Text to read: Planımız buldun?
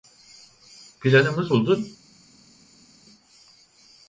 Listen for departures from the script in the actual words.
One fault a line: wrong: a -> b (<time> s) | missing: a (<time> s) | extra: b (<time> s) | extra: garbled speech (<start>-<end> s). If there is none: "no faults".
no faults